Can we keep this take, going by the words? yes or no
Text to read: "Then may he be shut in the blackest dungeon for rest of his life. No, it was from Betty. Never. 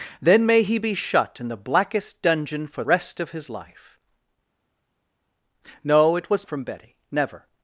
yes